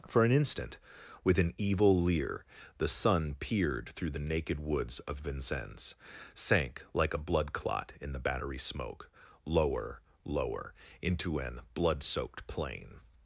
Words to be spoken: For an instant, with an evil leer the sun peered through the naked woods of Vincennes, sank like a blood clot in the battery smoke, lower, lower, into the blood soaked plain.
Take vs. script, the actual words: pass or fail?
fail